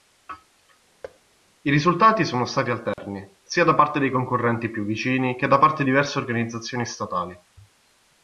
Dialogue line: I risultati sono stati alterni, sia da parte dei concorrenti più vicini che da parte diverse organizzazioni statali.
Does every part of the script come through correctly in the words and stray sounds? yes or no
no